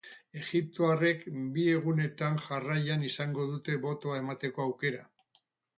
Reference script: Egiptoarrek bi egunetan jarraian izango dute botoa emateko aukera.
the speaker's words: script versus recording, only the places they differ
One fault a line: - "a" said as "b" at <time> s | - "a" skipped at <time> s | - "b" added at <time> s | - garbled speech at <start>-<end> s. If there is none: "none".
none